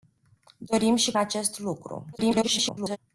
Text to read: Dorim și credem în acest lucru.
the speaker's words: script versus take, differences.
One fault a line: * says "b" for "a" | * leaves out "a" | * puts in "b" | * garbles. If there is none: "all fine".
* leaves out "credem în"
* garbles